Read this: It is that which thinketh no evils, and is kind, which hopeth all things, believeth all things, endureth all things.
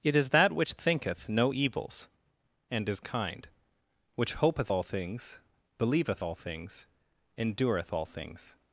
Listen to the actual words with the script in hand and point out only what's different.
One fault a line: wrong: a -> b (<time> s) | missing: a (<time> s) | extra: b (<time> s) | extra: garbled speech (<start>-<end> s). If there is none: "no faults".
no faults